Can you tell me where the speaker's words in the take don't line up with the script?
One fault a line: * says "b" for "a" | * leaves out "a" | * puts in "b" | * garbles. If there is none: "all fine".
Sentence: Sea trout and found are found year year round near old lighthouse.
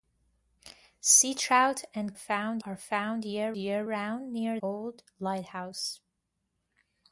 all fine